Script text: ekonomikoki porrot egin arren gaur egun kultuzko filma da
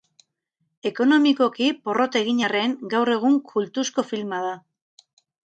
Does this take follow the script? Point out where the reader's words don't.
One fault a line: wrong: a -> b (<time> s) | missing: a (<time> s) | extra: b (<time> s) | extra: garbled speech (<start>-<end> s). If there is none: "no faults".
no faults